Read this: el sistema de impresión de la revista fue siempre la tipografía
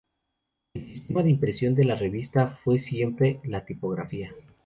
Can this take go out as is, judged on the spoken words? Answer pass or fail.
pass